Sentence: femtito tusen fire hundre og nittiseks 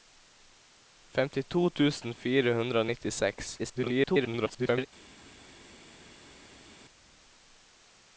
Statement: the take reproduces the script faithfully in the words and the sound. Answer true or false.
false